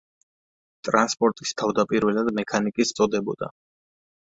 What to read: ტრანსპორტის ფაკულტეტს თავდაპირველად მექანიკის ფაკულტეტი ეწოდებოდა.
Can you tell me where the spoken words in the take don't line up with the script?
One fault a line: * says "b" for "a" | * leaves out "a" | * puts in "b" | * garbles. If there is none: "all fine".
* leaves out "ფაკულტეტს"
* leaves out "ფაკულტეტი"